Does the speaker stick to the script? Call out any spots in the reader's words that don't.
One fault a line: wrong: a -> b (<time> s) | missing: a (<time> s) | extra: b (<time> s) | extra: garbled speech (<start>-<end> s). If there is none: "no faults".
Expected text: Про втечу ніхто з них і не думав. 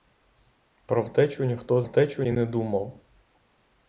wrong: них -> втечу (1.8 s)